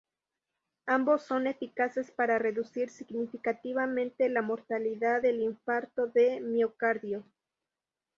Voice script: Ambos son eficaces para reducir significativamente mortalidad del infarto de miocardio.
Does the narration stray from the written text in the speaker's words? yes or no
yes